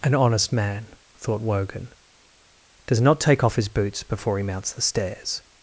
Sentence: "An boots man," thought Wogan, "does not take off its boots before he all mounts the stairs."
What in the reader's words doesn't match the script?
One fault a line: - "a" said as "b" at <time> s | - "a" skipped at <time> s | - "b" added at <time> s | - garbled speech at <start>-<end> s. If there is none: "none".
- "boots" said as "honest" at 0.1 s
- "its" said as "his" at 3.6 s
- "all" skipped at 4.4 s